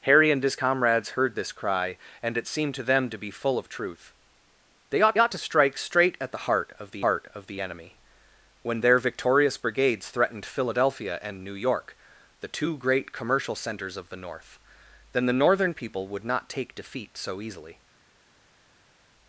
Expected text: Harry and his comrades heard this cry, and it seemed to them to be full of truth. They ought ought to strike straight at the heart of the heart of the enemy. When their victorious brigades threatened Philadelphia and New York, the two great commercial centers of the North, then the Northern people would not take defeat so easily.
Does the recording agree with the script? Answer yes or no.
yes